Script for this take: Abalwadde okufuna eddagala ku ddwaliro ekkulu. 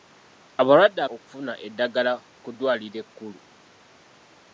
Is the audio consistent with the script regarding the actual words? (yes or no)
yes